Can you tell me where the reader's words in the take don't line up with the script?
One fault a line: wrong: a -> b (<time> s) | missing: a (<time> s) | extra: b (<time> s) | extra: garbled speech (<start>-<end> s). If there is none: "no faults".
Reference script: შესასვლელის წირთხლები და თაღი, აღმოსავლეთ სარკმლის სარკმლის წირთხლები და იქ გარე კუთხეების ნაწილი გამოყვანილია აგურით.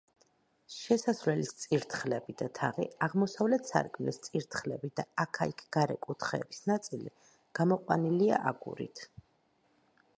missing: სარკმლის (4.2 s)
extra: აქა (5.2 s)